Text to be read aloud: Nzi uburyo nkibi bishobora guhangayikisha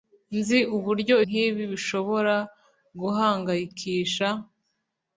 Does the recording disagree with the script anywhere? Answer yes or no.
no